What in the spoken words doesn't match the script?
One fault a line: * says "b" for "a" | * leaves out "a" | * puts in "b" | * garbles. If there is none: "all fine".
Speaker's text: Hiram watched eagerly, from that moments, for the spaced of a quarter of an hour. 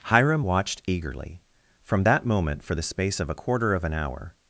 * says "moment" for "moments"
* says "space" for "spaced"